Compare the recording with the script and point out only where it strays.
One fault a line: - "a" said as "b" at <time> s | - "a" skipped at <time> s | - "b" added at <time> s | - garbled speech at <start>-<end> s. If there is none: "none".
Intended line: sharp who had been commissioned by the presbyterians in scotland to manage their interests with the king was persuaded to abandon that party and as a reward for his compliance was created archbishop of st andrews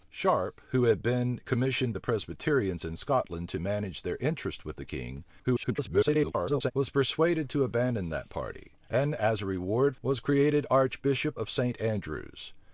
- "by" skipped at 1.9 s
- garbled speech at 5.4-6.7 s
- "for his compliance" skipped at 10.0 s